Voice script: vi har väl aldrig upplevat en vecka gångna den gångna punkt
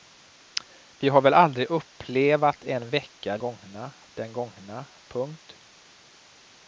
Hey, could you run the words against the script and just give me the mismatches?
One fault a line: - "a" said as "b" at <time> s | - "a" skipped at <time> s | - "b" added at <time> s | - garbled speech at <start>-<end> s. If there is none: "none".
none